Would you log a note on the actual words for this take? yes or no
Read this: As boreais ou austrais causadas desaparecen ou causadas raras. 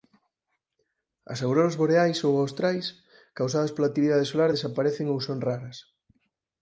yes